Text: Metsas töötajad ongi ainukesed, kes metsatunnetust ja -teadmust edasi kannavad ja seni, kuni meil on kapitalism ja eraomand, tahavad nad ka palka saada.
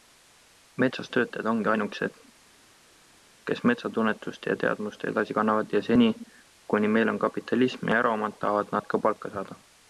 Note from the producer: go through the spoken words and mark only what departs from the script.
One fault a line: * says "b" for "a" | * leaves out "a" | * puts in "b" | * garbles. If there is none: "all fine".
all fine